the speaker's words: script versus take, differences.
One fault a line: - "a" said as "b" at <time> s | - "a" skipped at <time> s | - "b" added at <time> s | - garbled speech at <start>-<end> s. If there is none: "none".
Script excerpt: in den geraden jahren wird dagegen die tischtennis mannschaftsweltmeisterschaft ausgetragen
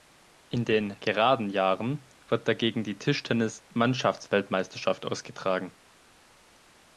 none